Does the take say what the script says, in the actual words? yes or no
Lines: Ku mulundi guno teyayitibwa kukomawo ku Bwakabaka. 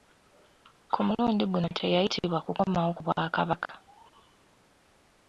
yes